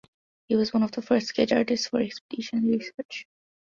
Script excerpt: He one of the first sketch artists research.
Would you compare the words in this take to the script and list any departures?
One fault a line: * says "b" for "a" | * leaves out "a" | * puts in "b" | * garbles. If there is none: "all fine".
* puts in "was"
* puts in "for expedition"